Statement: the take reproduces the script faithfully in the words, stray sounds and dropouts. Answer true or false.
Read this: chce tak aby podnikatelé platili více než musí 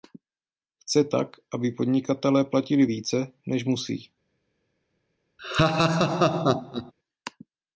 false